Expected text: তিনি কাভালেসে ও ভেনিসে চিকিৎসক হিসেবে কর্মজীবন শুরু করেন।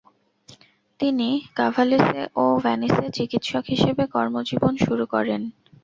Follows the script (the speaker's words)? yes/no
yes